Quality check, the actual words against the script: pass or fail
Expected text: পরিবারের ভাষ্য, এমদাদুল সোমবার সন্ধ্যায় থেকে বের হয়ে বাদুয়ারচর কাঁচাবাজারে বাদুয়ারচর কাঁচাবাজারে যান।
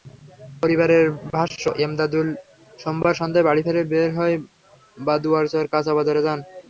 fail